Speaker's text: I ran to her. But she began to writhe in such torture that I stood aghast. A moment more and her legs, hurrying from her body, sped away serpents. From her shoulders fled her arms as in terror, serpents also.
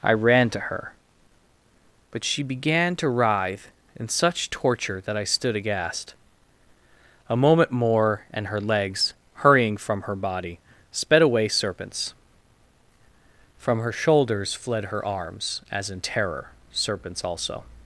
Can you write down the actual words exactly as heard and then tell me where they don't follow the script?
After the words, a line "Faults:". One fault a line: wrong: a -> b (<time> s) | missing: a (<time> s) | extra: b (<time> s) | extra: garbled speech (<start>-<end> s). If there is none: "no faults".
I ran to her. But she began to writhe in such torture that I stood aghast. A moment more and her legs, hurrying from her body, sped away serpents. From her shoulders fled her arms as in terror, serpents also.
Faults:
no faults